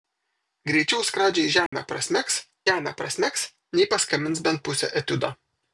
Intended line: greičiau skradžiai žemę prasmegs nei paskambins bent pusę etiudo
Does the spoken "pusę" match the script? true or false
true